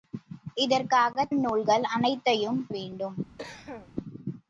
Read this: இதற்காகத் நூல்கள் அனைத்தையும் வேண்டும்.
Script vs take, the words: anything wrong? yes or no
no